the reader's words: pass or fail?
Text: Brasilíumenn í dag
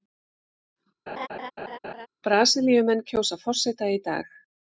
fail